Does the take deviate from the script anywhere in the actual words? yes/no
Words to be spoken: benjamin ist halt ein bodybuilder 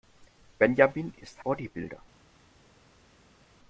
yes